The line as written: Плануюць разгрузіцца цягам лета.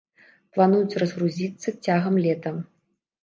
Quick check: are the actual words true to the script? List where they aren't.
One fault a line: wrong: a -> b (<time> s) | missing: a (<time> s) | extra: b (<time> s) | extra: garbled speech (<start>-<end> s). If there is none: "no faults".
no faults